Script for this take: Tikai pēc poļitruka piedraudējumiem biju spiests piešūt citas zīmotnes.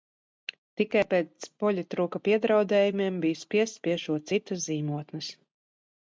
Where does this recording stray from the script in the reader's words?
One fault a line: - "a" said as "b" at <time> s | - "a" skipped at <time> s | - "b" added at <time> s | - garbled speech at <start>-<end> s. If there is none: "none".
none